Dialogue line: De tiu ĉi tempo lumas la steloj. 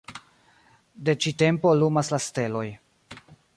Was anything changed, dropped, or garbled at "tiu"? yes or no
yes